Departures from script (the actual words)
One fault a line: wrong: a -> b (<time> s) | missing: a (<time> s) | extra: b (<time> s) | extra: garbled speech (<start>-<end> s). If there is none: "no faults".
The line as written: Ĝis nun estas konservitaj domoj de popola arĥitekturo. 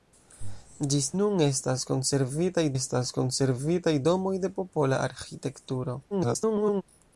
extra: estas konservitaj (2.7 s)
extra: garbled speech (6.1-6.8 s)